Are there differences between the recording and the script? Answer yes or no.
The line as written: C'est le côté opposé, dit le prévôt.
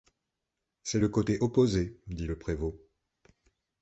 no